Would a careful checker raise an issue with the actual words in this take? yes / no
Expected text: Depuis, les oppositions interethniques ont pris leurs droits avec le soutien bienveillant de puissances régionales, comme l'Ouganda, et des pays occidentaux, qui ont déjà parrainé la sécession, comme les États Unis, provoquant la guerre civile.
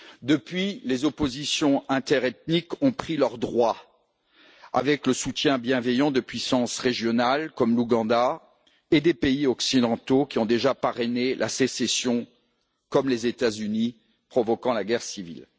no